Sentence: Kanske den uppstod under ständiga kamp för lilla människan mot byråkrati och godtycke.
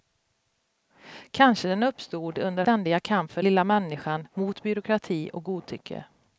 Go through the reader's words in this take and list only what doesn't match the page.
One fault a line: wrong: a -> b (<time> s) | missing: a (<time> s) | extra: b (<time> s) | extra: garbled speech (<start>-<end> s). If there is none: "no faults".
no faults